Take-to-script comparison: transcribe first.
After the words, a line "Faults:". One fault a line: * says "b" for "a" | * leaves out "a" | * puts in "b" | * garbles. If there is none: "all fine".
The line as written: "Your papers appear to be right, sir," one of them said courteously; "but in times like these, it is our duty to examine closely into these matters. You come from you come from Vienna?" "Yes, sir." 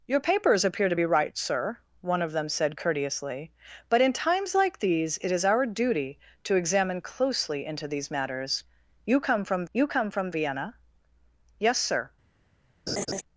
"Your papers appear to be right, sir," one of them said courteously; "but in times like these, it is our duty to examine closely into these matters. You come from you come from Vienna?" "Yes, sir."
Faults:
all fine